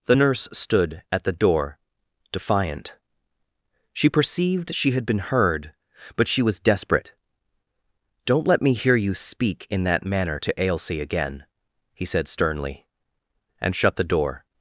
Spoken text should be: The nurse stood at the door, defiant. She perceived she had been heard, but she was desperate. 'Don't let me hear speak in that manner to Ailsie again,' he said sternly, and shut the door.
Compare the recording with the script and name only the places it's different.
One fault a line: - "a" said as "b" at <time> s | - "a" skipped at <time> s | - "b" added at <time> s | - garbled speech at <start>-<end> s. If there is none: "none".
- "you" added at 9.0 s